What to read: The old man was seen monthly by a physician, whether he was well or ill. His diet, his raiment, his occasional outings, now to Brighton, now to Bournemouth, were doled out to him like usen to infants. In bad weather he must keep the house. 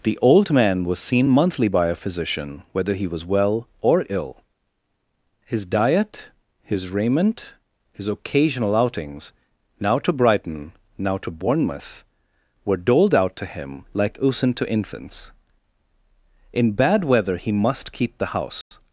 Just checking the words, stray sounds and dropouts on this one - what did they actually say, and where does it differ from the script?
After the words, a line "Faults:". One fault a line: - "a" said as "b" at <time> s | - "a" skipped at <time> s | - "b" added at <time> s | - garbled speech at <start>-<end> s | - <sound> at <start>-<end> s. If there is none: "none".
The old man was seen monthly by a physician, whether he was well or ill. His diet, his raiment, his occasional outings, now to Brighton, now to Bournemouth, were doled out to him like usen to infants. In bad weather he must keep the house.
Faults:
- dropout at 18.6-18.7 s